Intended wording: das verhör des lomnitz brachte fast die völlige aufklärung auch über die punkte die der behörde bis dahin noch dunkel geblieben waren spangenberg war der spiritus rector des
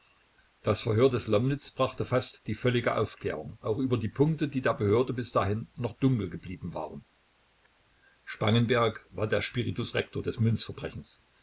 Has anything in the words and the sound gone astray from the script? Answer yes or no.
no